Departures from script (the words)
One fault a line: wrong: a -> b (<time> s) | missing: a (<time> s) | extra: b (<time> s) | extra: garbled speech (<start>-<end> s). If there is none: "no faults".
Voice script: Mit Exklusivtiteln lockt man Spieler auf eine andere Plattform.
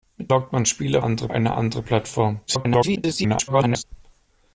missing: Exklusivtiteln (0.3 s)
wrong: auf -> andere (1.0 s)
extra: garbled speech (2.5-3.8 s)